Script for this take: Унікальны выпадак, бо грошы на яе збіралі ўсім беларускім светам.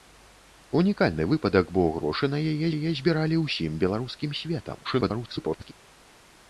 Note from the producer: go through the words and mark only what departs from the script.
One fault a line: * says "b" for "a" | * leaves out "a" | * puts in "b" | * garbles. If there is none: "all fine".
* puts in "яе"
* garbles